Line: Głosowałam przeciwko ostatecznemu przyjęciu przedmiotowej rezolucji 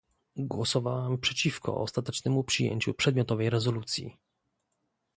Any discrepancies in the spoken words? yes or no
no